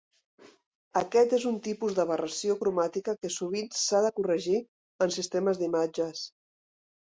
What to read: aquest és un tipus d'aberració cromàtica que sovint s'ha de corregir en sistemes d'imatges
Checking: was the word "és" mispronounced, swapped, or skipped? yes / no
no